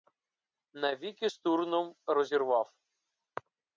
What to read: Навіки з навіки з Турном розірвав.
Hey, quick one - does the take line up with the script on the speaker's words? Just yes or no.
no